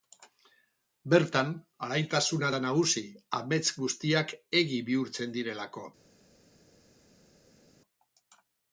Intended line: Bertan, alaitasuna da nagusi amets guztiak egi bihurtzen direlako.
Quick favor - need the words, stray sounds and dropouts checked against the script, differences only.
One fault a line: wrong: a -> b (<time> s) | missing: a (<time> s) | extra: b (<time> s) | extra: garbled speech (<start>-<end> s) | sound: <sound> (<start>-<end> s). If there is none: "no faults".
no faults